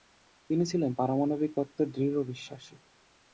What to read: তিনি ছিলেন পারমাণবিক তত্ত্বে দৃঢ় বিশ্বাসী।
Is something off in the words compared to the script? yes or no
no